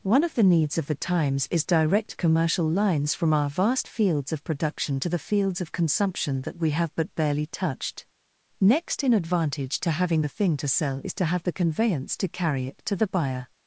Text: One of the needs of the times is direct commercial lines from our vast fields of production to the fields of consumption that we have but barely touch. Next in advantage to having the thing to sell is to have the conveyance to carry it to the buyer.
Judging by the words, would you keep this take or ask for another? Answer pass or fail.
fail